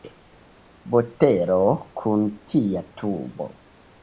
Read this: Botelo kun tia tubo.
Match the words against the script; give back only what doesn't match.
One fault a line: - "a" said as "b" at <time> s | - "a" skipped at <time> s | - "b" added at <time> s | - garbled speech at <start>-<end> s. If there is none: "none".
none